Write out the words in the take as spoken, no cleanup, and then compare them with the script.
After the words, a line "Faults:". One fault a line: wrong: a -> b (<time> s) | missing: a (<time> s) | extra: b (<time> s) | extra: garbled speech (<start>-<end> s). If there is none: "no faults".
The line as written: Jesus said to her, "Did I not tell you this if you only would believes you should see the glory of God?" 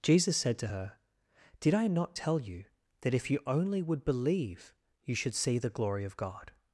Jesus said to her, "Did I not tell you that if you only would believe you should see the glory of God?"
Faults:
wrong: this -> that (3.0 s)
wrong: believes -> believe (4.0 s)